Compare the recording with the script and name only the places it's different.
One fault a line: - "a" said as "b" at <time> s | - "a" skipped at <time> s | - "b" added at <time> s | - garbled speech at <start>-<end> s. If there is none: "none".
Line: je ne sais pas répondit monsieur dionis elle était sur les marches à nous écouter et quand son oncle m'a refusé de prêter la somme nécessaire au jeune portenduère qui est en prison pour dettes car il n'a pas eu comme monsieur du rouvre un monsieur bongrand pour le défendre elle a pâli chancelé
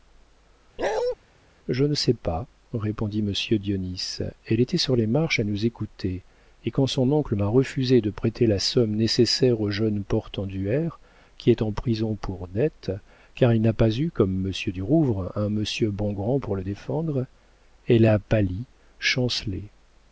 none